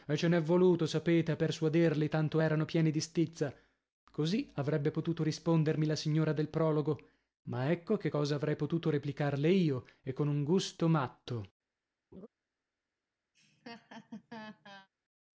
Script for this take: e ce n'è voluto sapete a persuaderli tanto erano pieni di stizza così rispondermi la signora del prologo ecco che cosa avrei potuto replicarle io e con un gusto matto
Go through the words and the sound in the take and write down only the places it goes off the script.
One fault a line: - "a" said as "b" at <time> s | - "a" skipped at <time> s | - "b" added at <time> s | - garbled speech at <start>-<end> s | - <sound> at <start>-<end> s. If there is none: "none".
- "avrebbe potuto" added at 4.6 s
- "ma" added at 7.5 s
- laugh at 12.1-12.3 s
- laugh at 13.3-14.9 s